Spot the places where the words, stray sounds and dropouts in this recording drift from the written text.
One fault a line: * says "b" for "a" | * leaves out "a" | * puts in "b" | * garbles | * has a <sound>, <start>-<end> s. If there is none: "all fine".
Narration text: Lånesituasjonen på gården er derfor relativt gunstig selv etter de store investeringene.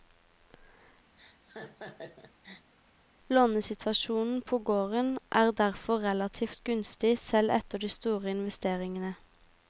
* has a laugh, 1.2-2.7 s